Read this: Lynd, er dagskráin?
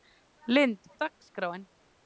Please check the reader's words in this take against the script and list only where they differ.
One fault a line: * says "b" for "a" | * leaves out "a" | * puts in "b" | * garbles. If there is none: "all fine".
all fine